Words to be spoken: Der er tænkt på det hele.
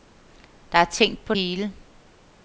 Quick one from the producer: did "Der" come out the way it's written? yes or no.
yes